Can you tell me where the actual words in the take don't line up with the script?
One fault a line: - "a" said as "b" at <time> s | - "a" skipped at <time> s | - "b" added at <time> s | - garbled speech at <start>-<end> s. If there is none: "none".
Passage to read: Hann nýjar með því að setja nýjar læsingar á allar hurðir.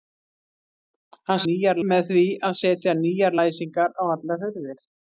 none